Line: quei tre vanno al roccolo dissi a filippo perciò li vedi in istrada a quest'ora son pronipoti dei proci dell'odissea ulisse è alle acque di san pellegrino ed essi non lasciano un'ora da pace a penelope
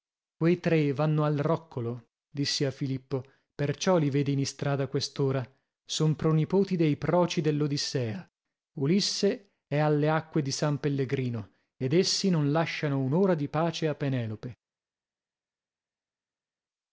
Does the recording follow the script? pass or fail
fail